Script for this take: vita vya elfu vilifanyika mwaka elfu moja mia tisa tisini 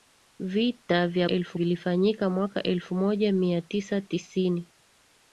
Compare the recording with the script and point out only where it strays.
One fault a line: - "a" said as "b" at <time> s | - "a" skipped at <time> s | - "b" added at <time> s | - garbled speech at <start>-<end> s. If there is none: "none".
none